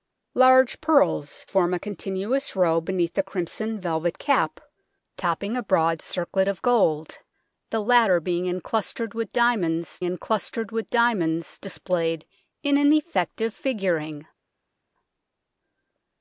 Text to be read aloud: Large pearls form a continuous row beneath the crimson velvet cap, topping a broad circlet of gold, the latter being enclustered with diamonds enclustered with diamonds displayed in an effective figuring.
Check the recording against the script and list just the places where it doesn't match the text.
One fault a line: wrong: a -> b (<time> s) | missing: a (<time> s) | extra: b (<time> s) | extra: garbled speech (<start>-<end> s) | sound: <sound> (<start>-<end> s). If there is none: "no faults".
no faults